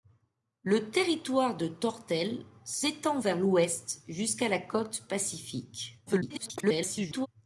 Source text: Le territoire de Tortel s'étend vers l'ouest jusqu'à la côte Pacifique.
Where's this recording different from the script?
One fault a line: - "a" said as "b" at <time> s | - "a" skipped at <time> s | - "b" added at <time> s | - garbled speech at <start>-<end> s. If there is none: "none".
- garbled speech at 6.1-7.3 s